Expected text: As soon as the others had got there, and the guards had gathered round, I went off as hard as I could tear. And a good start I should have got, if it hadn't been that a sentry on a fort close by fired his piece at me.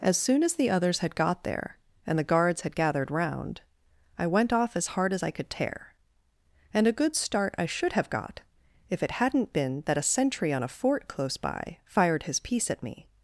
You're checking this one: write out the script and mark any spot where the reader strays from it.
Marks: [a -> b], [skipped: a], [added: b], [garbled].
As soon as the others had got there, and the guards had gathered round, I went off as hard as I could tear. And a good start I should have got, if it hadn't been that a sentry on a fort close by fired his piece at me.